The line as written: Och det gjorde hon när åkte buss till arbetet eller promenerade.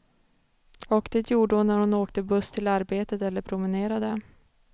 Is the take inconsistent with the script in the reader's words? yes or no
yes